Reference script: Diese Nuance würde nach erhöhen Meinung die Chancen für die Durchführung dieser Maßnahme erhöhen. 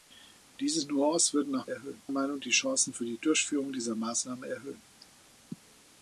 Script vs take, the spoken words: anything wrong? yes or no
no